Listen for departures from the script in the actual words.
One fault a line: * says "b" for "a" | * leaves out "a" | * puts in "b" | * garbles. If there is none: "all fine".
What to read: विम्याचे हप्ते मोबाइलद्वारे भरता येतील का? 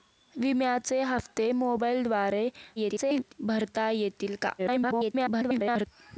* garbles
* garbles